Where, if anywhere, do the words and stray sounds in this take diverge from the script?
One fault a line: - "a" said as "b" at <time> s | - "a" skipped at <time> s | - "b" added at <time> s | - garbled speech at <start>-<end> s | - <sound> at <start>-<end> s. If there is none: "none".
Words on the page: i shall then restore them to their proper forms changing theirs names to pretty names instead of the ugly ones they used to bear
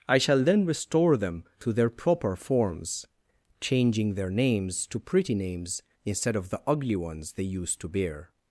- "theirs" said as "their" at 4.2 s